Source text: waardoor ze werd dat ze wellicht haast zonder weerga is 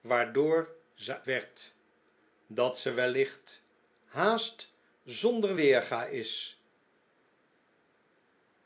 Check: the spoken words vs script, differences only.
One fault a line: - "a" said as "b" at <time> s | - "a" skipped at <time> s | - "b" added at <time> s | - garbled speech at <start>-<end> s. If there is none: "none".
none